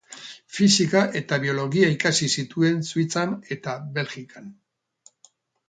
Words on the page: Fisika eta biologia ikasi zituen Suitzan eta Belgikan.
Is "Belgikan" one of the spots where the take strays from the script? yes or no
no